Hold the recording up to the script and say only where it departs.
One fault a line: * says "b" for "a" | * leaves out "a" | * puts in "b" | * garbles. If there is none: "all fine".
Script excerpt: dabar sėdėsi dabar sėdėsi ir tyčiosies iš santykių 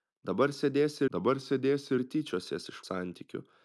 all fine